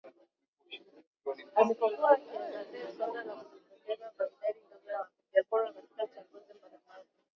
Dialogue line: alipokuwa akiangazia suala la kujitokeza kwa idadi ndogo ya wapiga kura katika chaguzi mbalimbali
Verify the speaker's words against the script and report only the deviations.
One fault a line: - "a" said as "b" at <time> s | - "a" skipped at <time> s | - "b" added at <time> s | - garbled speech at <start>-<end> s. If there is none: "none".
none